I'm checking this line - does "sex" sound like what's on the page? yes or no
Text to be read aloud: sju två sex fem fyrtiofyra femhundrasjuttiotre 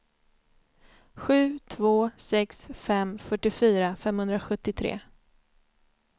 yes